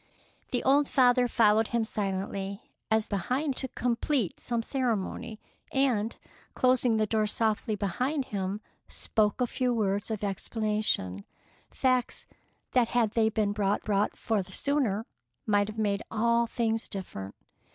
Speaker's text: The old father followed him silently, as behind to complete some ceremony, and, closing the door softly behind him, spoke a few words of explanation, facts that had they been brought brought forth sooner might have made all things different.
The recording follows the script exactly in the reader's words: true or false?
true